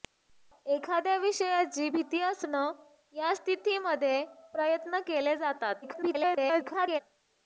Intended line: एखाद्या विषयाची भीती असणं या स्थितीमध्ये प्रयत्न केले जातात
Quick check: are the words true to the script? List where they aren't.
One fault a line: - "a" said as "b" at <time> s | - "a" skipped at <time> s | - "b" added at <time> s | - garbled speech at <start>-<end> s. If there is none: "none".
- garbled speech at 5.8-7.0 s